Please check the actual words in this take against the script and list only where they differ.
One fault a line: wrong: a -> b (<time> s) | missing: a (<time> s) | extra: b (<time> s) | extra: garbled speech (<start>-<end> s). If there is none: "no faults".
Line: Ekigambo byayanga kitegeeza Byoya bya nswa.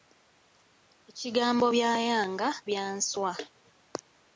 missing: kitegeeza Byoya (2.5 s)